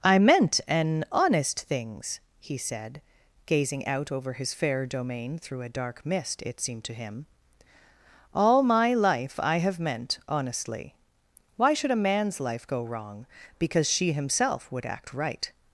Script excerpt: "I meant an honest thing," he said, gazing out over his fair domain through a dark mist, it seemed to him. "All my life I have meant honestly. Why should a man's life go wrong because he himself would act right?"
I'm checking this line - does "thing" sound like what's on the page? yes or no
no